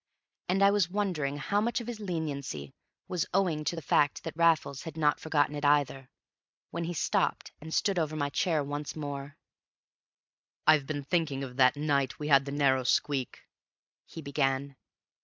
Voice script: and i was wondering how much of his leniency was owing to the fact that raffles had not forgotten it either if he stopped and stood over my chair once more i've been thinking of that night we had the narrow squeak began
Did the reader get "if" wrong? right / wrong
wrong